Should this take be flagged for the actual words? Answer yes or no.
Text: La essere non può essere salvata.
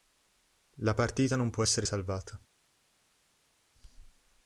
yes